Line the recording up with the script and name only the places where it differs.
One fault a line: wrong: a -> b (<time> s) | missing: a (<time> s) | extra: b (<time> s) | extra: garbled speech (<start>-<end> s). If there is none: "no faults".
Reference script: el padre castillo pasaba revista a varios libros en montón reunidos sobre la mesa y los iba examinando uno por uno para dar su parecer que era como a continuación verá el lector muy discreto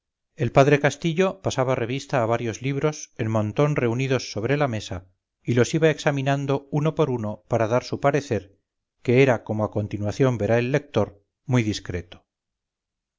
no faults